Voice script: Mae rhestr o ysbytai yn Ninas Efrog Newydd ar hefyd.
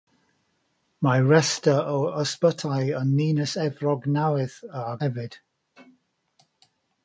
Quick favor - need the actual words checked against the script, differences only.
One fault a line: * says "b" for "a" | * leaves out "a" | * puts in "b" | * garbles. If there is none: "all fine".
all fine